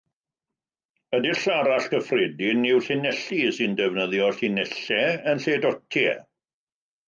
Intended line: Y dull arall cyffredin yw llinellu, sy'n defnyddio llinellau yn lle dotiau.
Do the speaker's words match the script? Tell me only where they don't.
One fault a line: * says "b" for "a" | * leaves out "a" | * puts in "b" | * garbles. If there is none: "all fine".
all fine